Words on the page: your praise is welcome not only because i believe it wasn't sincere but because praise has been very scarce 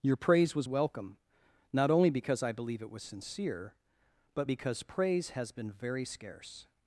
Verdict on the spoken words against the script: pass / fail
fail